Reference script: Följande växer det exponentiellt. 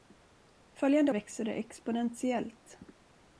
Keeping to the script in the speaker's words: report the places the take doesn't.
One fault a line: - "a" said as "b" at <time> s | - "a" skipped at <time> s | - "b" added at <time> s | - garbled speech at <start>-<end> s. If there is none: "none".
none